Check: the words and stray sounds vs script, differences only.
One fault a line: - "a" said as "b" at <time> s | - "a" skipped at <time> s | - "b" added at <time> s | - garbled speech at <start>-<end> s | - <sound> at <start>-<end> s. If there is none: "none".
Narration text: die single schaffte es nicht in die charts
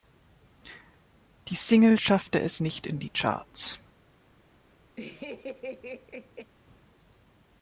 - laugh at 5.0-6.5 s